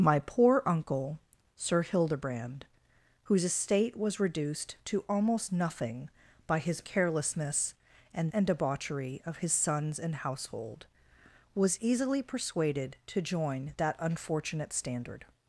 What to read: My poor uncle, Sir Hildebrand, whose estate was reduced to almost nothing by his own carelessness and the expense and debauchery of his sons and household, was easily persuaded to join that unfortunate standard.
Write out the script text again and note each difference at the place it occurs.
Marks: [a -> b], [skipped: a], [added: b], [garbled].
My poor uncle, Sir Hildebrand, whose estate was reduced to almost nothing by his [skipped: own] carelessness and [skipped: the expense] and debauchery of his sons and household, was easily persuaded to join that unfortunate standard.